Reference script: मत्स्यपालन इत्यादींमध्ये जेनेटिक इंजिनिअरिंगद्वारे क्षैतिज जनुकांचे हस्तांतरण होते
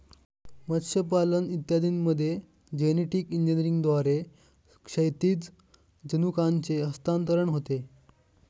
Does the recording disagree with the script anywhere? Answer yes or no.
no